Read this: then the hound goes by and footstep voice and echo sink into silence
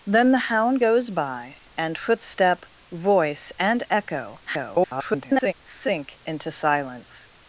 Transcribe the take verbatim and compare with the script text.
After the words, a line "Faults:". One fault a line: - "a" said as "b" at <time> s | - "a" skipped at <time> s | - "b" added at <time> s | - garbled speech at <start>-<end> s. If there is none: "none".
then the hound goes by and footstep voice and echo [garbled] sink into silence
Faults:
- garbled speech at 4.5-5.5 s